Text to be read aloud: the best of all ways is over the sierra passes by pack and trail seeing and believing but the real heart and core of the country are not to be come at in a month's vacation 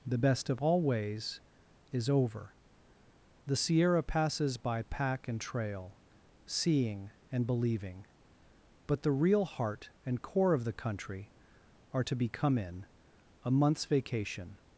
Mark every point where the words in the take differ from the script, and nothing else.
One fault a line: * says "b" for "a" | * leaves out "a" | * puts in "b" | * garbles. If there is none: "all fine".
* leaves out "not"
* leaves out "at"